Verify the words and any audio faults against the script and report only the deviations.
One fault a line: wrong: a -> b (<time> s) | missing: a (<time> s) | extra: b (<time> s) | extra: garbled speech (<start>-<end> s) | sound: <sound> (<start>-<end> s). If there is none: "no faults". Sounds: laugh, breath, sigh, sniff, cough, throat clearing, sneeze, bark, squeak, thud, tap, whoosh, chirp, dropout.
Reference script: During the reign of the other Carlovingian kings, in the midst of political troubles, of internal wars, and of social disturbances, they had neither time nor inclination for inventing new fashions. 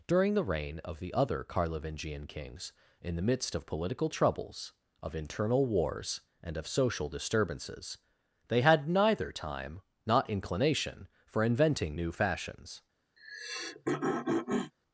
wrong: nor -> not (10.0 s)
sound: throat clearing (13.2-14.7 s)